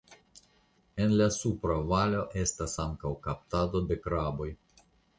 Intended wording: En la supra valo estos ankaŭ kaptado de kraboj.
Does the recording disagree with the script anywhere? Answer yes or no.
yes